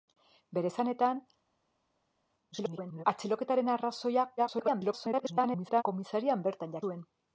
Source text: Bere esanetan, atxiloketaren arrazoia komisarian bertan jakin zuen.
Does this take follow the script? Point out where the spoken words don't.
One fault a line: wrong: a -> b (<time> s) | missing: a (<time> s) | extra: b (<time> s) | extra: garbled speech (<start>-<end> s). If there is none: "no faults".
extra: garbled speech (2.5-3.0 s)
extra: garbled speech (4.4-5.8 s)
missing: jakin (6.8 s)